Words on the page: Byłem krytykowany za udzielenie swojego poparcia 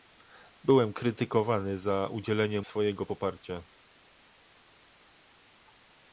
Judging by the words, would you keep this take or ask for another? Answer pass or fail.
pass